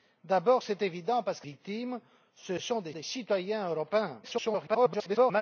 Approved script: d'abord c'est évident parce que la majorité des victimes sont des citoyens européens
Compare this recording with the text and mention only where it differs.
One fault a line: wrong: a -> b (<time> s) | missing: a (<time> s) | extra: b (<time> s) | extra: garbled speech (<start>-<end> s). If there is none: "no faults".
wrong: la majorité -> victimes sont (1.4 s)
missing: victimes sont (2.9 s)
extra: garbled speech (4.2-5.4 s)